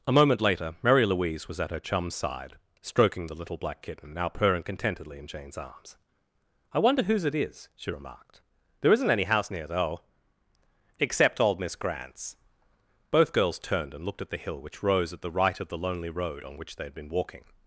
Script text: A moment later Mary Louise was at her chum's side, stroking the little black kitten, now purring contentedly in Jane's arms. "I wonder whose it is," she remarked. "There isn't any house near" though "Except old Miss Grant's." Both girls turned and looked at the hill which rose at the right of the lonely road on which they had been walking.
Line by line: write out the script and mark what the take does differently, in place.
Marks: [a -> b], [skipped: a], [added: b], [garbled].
A moment later Mary Louise was at her chum's side, stroking the little black kitten, now purring contentedly in Jane's arms. "I wonder whose it is," she remarked. "There isn't any house near" though "Except old Miss Grant's." Both girls turned and looked at the hill which rose at the right of the lonely road on which they had been walking.